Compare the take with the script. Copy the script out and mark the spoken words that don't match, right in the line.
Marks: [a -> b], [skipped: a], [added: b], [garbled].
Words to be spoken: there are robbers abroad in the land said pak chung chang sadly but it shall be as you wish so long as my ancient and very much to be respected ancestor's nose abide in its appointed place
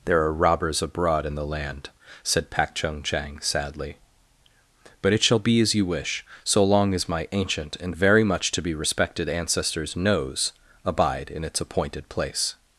there are robbers abroad in the land said pak chung chang sadly but it shall be as you wish so long as my ancient and very much to be respected ancestor's nose abide in its appointed place